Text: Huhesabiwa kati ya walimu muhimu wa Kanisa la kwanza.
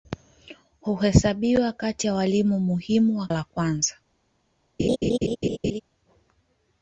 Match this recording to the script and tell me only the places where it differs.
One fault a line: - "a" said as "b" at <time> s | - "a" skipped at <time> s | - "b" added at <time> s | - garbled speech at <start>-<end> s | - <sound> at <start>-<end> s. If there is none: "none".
- "Kanisa" skipped at 3.3 s
- laugh at 4.8-5.8 s